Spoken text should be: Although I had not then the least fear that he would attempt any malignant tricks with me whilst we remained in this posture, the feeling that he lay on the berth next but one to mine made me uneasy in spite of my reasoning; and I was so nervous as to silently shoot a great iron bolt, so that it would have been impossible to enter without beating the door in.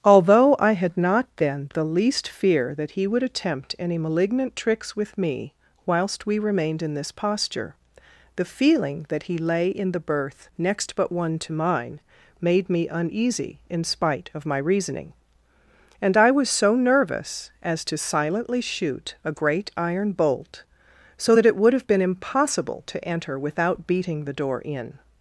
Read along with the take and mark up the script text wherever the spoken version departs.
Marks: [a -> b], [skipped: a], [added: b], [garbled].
Although I had not then the least fear that he would attempt any malignant tricks with me whilst we remained in this posture, the feeling that he lay [on -> in] the berth next but one to mine made me uneasy in spite of my reasoning; and I was so nervous as to silently shoot a great iron bolt, so that it would have been impossible to enter without beating the door in.